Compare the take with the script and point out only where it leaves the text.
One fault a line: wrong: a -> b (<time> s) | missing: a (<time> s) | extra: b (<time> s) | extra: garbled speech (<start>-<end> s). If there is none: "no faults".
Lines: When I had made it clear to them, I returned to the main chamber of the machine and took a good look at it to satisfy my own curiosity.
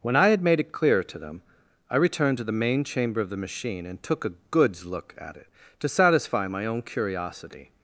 wrong: good -> goods (4.5 s)